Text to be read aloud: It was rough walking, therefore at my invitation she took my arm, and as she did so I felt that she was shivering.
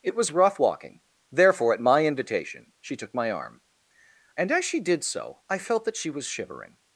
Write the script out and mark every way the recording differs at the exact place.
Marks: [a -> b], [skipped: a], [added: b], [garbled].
It was rough walking, therefore at my invitation she took my arm, and as she did so I felt that she was shivering.